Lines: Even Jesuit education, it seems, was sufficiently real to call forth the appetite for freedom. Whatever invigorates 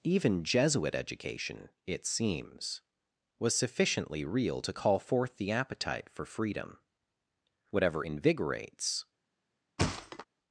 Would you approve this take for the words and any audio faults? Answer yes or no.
no